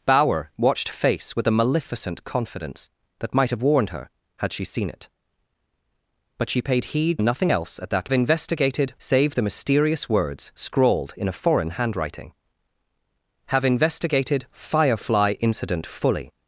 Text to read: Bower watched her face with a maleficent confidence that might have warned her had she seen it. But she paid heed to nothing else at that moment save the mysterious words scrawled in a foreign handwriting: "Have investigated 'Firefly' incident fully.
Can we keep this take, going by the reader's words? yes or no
no